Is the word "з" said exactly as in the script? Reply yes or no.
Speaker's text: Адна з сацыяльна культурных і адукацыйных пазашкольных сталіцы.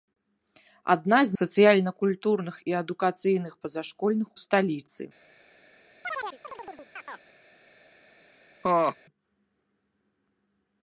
yes